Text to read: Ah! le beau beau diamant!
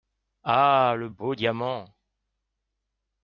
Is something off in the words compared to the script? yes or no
yes